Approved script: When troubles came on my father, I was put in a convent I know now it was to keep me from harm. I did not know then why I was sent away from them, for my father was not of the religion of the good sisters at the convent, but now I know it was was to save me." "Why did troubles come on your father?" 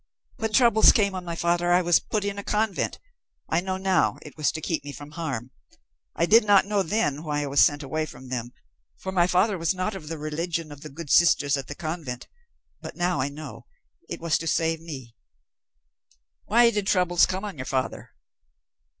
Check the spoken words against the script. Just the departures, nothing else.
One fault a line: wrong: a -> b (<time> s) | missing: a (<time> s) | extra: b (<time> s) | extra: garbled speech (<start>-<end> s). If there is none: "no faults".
missing: was (14.4 s)